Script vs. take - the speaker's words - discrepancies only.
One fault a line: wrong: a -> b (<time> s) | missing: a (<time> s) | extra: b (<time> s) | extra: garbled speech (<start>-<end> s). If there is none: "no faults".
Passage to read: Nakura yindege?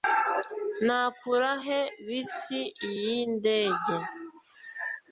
extra: he bisi (1.6 s)